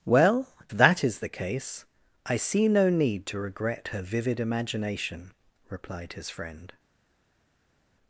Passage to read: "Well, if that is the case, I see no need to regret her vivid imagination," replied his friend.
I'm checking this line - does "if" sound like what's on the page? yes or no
no